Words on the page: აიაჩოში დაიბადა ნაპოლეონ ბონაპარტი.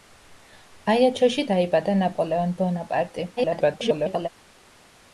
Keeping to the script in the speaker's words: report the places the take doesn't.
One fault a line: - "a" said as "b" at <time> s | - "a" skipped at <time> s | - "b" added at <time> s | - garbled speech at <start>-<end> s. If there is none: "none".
- garbled speech at 3.4-4.3 s